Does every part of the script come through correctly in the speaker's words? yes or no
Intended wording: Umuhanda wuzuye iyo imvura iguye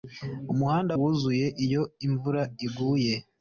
yes